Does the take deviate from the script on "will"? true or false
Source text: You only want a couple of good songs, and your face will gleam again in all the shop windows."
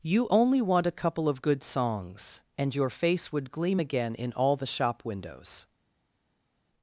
true